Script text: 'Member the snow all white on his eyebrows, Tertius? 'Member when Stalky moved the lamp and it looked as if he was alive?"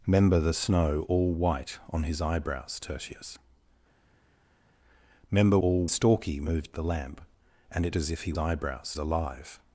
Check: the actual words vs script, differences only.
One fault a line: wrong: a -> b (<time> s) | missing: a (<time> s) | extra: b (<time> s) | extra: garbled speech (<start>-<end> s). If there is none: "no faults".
wrong: when -> all (5.6 s)
missing: looked (7.9 s)
wrong: was -> eyebrows (8.4 s)